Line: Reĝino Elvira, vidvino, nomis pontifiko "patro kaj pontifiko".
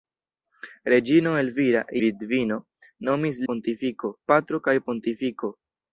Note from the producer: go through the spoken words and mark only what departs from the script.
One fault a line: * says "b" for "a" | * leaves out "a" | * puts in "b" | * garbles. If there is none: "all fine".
all fine